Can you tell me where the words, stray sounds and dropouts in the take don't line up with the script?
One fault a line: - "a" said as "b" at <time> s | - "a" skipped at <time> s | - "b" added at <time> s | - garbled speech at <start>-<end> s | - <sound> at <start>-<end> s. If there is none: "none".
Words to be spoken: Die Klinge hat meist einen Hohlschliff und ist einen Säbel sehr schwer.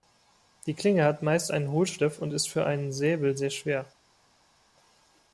- "für" added at 2.5 s